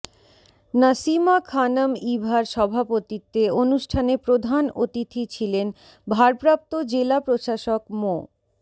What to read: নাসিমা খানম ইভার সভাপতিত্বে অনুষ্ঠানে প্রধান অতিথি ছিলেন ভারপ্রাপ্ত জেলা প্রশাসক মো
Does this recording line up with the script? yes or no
yes